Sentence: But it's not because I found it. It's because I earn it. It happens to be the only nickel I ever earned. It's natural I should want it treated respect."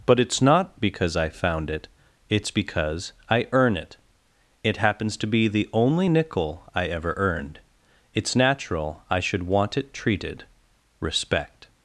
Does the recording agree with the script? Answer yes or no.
yes